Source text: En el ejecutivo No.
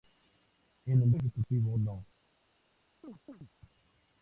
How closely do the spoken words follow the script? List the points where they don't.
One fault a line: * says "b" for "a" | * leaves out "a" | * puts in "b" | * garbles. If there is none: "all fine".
all fine